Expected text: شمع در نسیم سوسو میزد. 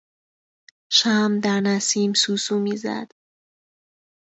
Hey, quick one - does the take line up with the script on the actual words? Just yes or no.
yes